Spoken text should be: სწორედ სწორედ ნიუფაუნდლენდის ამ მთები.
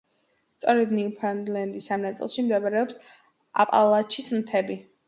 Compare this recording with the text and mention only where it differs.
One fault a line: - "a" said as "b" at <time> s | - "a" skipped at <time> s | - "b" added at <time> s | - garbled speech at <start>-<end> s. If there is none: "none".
- "სწორედ" skipped at 0.9 s
- "ნაწილში მდებარეობს აპალაჩის" added at 2.1 s